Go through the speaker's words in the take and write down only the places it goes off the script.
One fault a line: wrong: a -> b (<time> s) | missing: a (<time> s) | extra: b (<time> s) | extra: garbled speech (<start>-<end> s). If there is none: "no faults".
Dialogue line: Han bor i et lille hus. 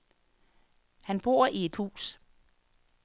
missing: lille (1.8 s)